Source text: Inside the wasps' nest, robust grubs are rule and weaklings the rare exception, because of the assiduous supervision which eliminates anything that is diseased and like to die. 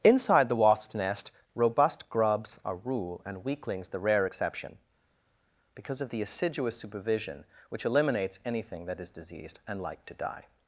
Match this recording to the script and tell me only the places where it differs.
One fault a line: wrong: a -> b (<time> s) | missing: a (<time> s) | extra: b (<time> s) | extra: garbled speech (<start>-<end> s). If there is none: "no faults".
no faults